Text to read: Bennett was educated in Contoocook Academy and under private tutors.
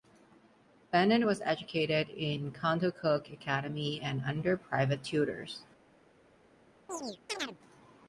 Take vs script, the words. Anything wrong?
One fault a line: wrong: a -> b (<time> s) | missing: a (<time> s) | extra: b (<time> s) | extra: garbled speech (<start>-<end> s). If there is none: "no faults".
no faults